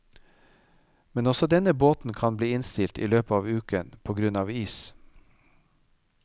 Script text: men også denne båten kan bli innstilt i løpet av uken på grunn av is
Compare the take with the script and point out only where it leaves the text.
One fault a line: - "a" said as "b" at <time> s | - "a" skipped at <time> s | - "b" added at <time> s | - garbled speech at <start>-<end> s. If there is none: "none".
none